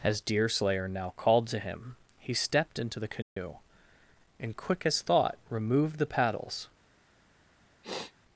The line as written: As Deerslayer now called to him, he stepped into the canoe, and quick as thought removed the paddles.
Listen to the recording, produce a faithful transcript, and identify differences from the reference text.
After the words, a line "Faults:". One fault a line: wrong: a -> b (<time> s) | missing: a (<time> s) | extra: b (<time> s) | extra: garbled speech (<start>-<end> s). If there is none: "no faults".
As Deerslayer now called to him, he stepped into the canoe, and quick as thought removed the paddles.
Faults:
no faults